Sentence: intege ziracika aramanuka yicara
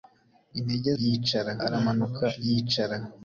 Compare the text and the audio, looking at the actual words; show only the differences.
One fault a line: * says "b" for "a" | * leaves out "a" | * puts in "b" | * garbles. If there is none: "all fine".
* says "yicara" for "ziracika"